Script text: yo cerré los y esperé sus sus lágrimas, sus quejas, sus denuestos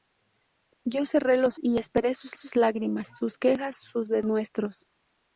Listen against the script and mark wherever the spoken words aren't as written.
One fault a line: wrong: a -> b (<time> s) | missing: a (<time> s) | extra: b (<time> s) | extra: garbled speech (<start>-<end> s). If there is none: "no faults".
no faults